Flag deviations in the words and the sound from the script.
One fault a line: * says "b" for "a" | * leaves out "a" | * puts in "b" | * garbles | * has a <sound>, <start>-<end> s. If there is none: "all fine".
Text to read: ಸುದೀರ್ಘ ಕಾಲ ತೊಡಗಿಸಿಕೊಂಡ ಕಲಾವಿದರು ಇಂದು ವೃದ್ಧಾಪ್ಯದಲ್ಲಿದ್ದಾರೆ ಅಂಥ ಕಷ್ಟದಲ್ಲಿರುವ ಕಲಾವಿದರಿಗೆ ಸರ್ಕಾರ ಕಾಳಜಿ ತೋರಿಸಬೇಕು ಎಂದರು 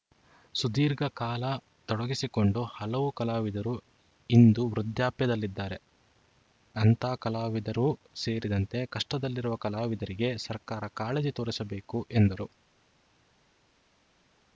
* puts in "ಹಲವು"
* puts in "ಕಲಾವಿದರೂ ಸೇರಿದಂತೆ"